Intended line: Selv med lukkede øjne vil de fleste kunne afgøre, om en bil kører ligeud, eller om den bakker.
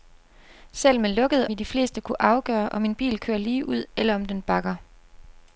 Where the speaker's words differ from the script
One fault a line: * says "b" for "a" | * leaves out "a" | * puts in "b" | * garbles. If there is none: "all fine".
* leaves out "øjne"